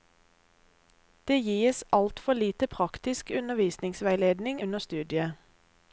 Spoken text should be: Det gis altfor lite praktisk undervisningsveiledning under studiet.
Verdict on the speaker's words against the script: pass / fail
pass